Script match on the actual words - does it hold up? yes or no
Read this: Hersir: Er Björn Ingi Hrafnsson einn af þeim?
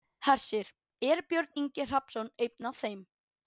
yes